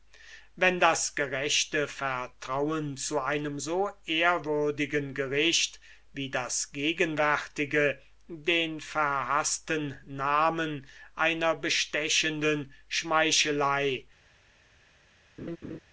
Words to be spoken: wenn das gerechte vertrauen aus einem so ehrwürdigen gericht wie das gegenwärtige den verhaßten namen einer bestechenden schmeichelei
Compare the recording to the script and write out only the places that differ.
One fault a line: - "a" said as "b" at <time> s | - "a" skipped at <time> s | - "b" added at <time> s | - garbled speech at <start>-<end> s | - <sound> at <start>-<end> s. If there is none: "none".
- "aus" said as "zu" at 3.0 s
- laugh at 15.4-15.8 s